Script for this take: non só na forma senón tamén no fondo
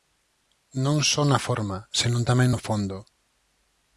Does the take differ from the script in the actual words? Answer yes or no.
no